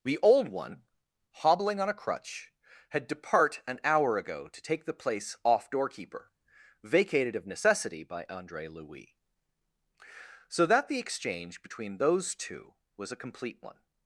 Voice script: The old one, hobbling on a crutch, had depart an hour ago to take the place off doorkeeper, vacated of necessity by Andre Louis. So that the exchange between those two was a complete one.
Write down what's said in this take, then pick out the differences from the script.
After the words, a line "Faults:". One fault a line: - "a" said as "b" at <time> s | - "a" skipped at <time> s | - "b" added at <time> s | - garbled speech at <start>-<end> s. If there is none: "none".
The old one, hobbling on a crutch, had depart an hour ago to take the place off doorkeeper, vacated of necessity by Andre Louis. So that the exchange between those two was a complete one.
Faults:
none